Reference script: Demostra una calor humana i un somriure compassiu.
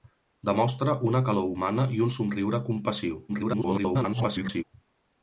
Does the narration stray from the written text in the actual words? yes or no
yes